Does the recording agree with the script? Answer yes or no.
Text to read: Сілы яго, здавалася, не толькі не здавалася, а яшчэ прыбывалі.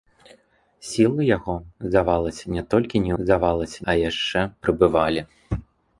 yes